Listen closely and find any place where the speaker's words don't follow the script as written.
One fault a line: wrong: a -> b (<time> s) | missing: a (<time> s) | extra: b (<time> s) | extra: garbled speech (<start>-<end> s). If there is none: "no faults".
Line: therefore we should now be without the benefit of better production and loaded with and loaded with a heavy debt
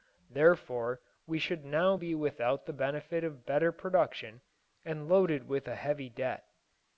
missing: and loaded with (5.7 s)